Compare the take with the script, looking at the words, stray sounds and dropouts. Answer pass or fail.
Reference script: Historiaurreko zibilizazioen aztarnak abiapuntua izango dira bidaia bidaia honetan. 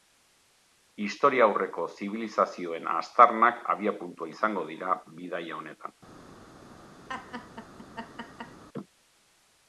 fail